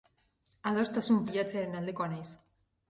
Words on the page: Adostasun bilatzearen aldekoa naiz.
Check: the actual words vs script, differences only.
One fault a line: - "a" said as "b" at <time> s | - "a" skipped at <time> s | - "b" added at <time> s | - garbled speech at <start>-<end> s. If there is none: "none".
none